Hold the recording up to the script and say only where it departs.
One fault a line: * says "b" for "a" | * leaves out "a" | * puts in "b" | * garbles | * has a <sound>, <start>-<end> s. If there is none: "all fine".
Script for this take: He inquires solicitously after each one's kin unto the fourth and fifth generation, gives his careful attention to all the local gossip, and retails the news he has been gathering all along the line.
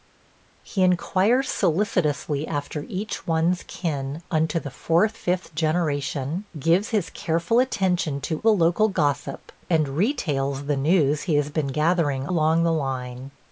* leaves out "and"
* leaves out "all"
* leaves out "all"